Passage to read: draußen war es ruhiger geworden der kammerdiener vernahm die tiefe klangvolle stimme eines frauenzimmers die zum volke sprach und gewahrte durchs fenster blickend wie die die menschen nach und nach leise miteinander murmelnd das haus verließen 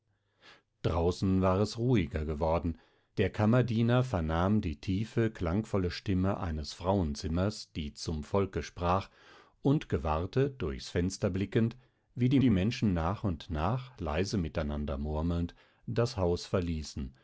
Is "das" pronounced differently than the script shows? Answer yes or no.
no